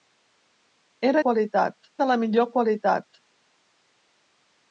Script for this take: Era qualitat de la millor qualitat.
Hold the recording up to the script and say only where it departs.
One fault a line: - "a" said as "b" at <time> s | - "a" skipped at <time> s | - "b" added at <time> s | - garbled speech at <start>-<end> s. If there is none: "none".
none